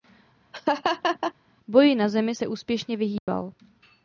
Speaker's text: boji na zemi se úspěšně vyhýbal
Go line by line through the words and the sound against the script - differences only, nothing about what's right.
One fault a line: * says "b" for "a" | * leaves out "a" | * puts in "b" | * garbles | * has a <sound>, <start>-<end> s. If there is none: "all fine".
* has a laugh, 0.5-1.3 s
* has a dropout, 3.2-3.3 s